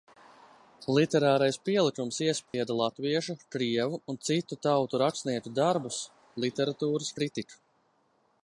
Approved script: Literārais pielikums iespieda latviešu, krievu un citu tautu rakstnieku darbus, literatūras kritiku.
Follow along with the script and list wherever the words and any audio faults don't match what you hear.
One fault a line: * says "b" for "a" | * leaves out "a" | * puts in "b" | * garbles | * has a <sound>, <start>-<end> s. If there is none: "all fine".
* has a dropout, 2.5-2.5 s